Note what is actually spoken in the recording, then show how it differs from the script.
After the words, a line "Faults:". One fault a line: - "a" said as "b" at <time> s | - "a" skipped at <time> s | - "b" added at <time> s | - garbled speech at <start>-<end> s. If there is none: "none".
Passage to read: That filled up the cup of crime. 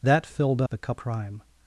That filled the cup crime.
Faults:
- "up" skipped at 0.6 s
- "of" skipped at 1.0 s